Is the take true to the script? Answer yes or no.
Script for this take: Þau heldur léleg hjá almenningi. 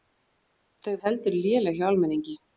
yes